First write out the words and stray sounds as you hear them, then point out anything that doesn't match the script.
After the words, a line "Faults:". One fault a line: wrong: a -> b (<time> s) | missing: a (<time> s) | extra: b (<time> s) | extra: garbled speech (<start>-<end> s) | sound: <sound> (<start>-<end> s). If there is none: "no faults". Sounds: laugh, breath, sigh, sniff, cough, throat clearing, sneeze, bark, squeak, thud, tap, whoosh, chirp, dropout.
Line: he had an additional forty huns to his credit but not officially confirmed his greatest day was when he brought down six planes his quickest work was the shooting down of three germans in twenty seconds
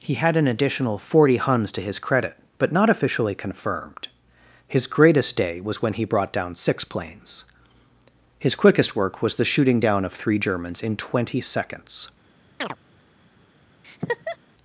he had an additional forty huns to his credit but not officially confirmed his greatest day was when he brought down six planes his quickest work was the shooting down of three germans in twenty seconds
Faults:
sound: chirp (12.6-12.8 s)
sound: laugh (13.8-14.4 s)